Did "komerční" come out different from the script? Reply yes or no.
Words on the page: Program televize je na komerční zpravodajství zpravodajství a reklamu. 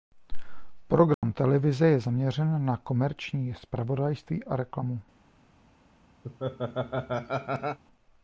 no